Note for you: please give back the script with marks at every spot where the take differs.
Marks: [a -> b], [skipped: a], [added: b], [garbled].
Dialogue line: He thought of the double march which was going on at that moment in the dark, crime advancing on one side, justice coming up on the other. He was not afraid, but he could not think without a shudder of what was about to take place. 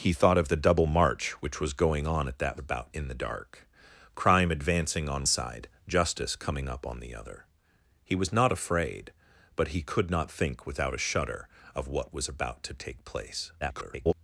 He thought of the double march which was going on at that [moment -> about] in the dark, crime advancing on [skipped: one] side, justice coming up on the other. He was not afraid, but he could not think without a shudder of what was about to take place. [garbled]